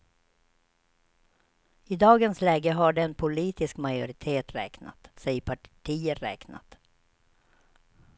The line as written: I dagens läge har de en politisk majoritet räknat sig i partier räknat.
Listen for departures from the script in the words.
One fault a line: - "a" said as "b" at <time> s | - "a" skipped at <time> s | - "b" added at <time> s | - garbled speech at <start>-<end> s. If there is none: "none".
none